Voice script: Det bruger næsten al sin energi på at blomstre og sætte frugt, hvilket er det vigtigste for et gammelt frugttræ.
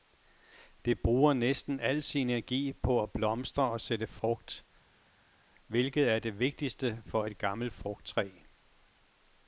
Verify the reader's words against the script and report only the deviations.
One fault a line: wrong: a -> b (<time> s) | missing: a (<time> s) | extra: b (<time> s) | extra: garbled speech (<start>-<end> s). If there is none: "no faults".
no faults